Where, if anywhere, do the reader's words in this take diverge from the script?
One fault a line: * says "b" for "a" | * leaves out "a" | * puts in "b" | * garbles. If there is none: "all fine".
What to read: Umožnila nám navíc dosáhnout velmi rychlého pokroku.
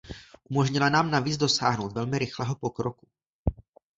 all fine